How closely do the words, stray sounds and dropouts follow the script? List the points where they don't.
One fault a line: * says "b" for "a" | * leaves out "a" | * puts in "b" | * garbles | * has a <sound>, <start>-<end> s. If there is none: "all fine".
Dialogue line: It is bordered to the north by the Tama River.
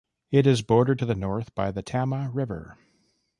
all fine